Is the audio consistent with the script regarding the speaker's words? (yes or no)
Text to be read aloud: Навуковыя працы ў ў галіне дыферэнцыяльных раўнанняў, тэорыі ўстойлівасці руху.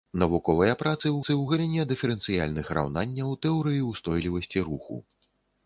yes